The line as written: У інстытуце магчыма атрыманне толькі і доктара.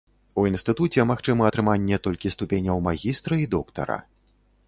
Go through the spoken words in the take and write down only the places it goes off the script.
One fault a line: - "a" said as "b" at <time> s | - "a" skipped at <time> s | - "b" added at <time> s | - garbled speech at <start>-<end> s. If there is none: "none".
- "ступеняў магістра" added at 2.4 s